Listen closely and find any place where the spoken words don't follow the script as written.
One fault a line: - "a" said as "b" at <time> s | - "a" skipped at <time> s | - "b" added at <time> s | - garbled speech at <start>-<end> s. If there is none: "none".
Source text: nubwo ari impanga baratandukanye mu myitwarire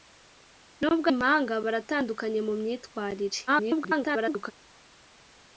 - "ari" skipped at 1.1 s
- garbled speech at 3.5-4.5 s